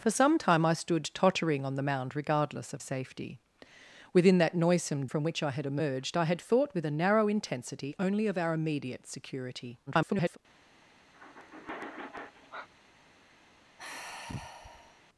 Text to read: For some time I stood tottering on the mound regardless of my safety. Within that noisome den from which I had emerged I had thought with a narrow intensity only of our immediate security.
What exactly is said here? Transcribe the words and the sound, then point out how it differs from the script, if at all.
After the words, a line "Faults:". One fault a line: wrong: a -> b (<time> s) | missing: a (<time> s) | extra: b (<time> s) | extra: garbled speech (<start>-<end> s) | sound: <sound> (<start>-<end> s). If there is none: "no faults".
For some time I stood tottering on the mound regardless of safety. Within that noisome from which I had emerged I had thought with a narrow intensity only of our immediate security. [garbled]
Faults:
missing: my (2.8 s)
missing: den (5.1 s)
extra: garbled speech (9.9-10.4 s)
sound: sigh (11.1-12.7 s)
sound: sigh (13.8-15.0 s)